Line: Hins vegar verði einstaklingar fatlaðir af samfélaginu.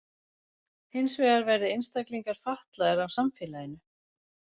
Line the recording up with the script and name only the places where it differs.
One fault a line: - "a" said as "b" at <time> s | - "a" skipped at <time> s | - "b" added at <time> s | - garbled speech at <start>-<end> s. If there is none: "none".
none